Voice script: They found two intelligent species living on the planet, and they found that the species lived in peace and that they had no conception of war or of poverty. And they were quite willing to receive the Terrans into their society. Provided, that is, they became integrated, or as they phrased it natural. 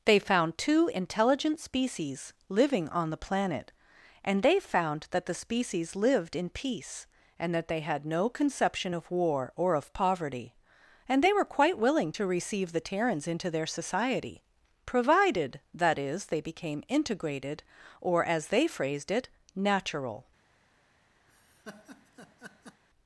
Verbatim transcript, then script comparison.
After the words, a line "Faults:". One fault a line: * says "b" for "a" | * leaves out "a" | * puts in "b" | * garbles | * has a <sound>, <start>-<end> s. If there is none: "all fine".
They found two intelligent species living on the planet, and they found that the species lived in peace and that they had no conception of war or of poverty. And they were quite willing to receive the Terrans into their society. Provided, that is, they became integrated, or as they phrased it natural.
Faults:
* has a laugh, 21.3-22.8 s